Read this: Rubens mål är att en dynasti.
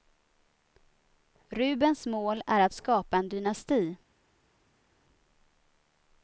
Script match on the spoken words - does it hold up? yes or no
no